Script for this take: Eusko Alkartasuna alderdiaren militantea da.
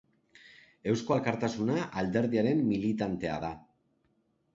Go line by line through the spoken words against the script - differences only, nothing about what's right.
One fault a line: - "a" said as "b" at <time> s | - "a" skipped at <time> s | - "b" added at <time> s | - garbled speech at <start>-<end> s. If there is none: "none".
none